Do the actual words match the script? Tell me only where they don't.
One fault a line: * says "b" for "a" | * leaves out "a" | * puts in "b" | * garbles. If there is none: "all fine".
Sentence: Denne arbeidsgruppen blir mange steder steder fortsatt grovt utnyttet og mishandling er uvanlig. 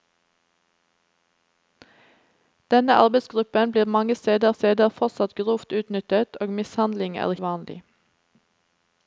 all fine